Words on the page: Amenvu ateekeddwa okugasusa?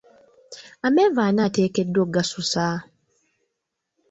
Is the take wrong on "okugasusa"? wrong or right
right